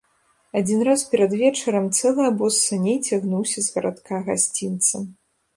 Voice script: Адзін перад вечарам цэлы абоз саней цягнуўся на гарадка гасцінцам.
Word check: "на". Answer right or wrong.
wrong